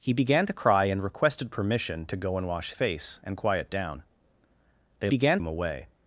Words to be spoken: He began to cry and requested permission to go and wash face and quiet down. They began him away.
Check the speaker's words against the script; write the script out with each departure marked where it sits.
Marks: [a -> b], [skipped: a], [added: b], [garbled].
He began to cry and requested permission to go and wash face and quiet down. They began him away.